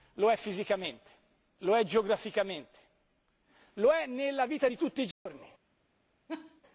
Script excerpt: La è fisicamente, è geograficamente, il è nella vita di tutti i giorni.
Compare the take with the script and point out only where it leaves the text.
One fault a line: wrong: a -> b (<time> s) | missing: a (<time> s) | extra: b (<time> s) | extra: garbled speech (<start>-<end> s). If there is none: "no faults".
wrong: La -> Lo (0.1 s)
extra: lo (1.6 s)
wrong: il -> lo (3.8 s)